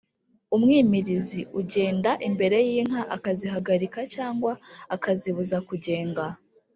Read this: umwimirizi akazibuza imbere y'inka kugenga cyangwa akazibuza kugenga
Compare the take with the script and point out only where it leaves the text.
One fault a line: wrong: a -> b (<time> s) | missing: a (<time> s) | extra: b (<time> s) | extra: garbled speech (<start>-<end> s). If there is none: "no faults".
wrong: akazibuza -> ugenda (1.6 s)
wrong: kugenga -> akazihagarika (3.1 s)